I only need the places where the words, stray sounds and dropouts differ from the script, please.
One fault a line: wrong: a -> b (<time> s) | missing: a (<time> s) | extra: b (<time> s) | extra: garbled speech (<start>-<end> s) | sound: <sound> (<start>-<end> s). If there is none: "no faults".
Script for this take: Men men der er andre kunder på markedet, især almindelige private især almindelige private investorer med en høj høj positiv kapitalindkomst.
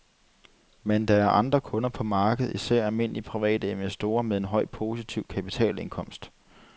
missing: men (1.1 s)
missing: især almindelige private (3.7 s)
missing: høj (4.7 s)